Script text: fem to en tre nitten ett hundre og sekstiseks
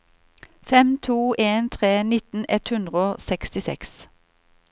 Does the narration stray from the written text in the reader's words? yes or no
no